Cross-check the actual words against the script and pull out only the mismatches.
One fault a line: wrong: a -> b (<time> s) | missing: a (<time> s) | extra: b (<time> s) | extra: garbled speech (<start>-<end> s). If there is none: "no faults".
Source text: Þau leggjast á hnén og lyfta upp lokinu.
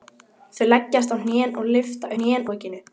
wrong: upp -> hnén (2.2 s)